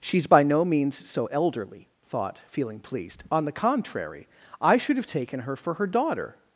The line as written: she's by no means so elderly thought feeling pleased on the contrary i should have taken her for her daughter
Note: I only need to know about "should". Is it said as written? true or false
true